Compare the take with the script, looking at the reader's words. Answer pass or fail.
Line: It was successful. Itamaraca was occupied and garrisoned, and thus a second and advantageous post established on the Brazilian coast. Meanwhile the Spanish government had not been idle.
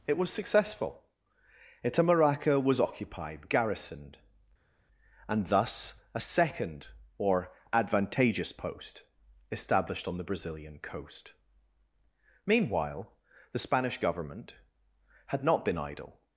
fail